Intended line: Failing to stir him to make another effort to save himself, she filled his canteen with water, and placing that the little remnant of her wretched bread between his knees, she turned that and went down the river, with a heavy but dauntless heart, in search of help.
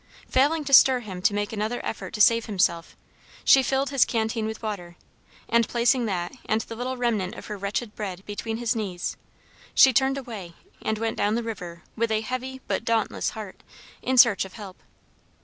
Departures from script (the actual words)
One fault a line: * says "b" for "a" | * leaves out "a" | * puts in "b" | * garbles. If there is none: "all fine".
* puts in "and"
* says "away" for "that"